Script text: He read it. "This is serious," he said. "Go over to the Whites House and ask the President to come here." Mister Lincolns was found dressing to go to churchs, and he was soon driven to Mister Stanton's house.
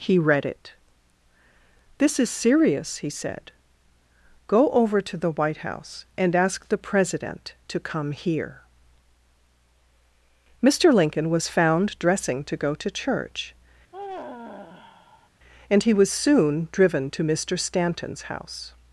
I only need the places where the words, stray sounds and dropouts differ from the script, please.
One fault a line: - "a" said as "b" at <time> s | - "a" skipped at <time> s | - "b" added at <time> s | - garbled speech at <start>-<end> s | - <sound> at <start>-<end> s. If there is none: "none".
- "Whites" said as "White" at 5.3 s
- "Lincolns" said as "Lincoln" at 10.9 s
- "churchs" said as "church" at 12.9 s
- sigh at 13.9-15.3 s